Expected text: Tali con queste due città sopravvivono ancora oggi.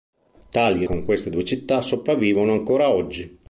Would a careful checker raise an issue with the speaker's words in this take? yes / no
no